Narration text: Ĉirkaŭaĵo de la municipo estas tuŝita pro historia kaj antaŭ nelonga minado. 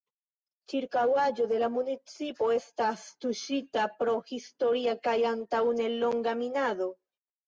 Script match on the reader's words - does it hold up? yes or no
yes